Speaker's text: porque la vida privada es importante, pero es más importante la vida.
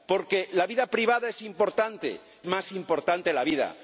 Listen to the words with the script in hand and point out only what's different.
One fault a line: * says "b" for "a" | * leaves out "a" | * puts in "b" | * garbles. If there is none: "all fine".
* leaves out "pero es"